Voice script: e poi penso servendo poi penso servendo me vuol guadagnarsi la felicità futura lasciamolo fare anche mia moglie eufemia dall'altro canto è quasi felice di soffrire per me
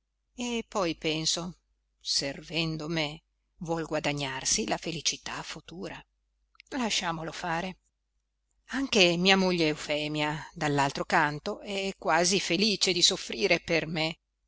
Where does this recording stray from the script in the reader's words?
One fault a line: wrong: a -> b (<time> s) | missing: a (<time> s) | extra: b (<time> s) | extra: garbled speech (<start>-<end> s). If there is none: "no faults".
missing: poi penso servendo (2.9 s)